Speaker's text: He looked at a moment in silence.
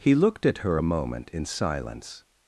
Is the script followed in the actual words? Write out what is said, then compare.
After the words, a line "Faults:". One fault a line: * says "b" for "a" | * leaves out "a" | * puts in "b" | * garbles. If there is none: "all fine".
He looked at her a moment in silence.
Faults:
* puts in "her"